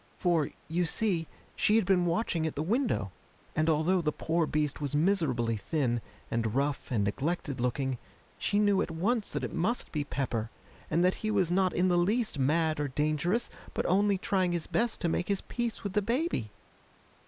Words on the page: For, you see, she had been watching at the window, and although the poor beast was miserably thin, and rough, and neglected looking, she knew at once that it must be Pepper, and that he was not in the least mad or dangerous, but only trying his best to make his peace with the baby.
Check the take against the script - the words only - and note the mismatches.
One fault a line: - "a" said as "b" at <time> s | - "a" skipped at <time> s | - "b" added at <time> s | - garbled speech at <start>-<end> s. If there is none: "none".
none